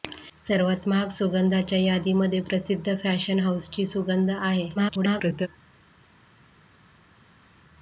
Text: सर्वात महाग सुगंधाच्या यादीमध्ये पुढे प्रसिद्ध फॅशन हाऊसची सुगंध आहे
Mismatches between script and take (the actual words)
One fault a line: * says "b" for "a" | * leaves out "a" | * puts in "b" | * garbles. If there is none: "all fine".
* leaves out "पुढे"
* garbles